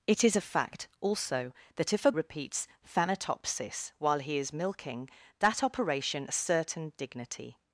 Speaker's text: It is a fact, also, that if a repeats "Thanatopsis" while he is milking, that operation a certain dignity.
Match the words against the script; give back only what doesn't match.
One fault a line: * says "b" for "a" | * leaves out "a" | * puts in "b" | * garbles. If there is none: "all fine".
all fine